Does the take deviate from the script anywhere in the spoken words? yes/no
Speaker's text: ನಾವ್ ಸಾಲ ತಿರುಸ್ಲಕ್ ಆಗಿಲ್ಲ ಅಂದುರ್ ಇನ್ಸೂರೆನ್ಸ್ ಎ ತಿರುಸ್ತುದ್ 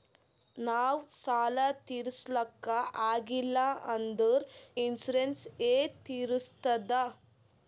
no